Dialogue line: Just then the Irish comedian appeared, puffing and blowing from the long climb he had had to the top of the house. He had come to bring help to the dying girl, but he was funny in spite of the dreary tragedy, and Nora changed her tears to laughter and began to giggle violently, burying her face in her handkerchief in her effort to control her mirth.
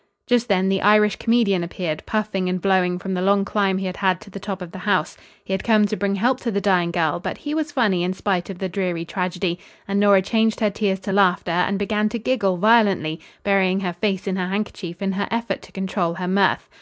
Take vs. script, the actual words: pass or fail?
pass